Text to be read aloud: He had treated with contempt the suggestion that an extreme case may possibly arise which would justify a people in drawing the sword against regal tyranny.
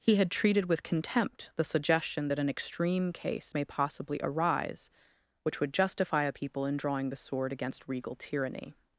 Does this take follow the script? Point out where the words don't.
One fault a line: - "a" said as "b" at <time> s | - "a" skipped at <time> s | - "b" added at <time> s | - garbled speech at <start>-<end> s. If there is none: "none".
none